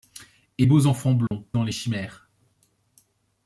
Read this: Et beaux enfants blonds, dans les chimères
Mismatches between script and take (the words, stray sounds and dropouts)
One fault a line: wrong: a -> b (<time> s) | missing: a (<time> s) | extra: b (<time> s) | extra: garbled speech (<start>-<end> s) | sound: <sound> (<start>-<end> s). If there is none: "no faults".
sound: dropout (1.3-1.3 s)